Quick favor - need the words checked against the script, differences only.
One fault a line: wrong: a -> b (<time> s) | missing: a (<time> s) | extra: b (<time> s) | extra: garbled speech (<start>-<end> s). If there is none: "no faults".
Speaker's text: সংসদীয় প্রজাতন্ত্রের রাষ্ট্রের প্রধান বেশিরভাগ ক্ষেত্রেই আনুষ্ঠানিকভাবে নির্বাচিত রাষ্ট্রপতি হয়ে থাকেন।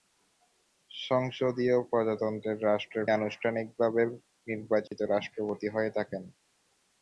missing: প্রধান বেশিরভাগ ক্ষেত্রেই (3.0 s)